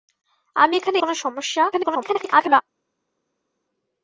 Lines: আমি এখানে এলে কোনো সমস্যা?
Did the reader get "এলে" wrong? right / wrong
wrong